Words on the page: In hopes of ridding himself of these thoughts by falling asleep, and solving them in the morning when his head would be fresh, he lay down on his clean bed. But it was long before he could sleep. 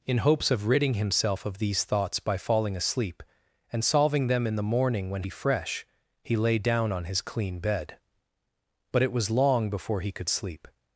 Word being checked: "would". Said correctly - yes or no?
no